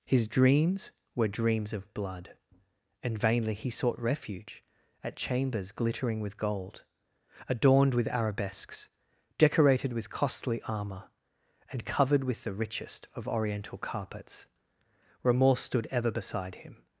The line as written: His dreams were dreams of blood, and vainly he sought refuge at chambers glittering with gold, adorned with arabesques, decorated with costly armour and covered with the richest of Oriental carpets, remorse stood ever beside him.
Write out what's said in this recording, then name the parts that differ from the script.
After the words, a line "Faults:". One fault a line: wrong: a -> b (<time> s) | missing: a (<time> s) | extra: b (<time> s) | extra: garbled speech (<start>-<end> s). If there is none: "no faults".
His dreams were dreams of blood, and vainly he sought refuge at chambers glittering with gold, adorned with arabesques, decorated with costly armour and covered with the richest of Oriental carpets, remorse stood ever beside him.
Faults:
no faults